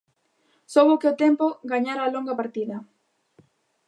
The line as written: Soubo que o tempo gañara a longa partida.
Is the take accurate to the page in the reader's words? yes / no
yes